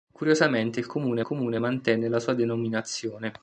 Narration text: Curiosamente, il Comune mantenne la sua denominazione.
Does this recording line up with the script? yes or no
no